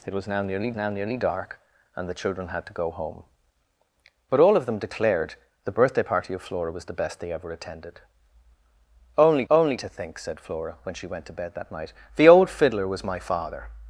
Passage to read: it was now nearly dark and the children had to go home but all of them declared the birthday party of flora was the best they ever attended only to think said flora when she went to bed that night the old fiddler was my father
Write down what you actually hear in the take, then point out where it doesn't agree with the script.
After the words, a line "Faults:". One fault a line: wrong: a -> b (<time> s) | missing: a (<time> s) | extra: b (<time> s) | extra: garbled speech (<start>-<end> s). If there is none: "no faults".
it was now nearly now nearly dark and the children had to go home but all of them declared the birthday party of flora was the best they ever attended only only to think said flora when she went to bed that night the old fiddler was my father
Faults:
extra: now nearly (0.7 s)
extra: only (9.5 s)